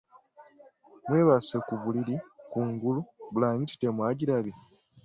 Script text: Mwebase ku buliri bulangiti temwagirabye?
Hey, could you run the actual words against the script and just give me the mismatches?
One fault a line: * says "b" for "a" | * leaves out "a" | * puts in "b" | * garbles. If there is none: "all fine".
* puts in "kungulu"